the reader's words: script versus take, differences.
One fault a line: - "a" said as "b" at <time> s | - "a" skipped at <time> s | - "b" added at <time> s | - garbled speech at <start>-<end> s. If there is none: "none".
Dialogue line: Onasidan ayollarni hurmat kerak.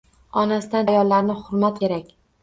none